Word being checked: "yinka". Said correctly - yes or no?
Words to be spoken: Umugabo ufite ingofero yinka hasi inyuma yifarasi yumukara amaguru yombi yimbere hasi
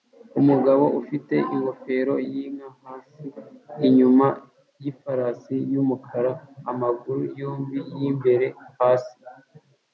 yes